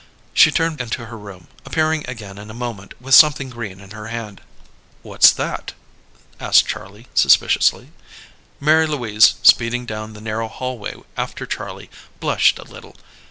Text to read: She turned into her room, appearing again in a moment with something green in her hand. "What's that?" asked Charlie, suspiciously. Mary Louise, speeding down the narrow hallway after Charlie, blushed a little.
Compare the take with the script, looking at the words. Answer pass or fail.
pass